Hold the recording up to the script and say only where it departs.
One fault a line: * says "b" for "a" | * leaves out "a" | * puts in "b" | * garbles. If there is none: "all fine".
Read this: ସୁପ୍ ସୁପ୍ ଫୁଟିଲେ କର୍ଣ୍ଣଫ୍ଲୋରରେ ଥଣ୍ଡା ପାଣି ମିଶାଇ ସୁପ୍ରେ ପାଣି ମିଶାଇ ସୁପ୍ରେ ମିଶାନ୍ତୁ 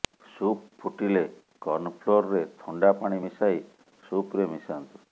* leaves out "ସୁପ୍"
* leaves out "ପାଣି ମିଶାଇ ସୁପ୍ରେ"